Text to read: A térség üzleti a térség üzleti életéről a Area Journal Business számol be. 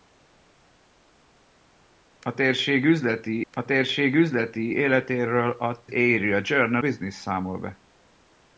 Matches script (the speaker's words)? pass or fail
pass